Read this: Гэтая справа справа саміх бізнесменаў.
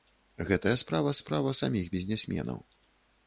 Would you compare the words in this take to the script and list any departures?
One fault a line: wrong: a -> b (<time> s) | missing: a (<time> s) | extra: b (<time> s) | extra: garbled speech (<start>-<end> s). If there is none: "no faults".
no faults